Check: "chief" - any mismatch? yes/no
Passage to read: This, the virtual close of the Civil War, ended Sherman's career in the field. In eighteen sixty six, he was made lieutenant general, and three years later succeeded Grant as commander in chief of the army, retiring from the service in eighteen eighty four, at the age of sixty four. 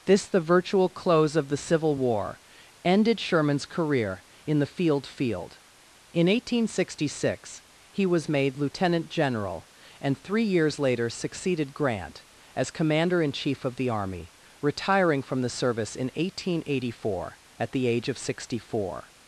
no